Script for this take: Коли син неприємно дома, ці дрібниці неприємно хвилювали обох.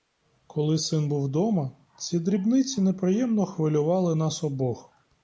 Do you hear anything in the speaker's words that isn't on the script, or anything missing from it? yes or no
yes